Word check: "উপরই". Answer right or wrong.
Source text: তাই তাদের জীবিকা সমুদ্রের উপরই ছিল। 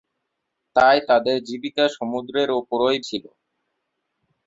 right